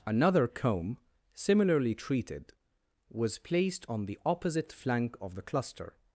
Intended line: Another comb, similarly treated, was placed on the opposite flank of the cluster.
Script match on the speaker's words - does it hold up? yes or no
yes